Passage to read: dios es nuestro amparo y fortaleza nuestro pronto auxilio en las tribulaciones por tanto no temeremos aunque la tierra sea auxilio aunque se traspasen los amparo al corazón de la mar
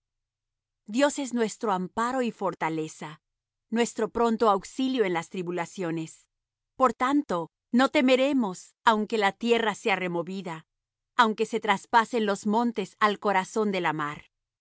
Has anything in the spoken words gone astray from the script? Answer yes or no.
yes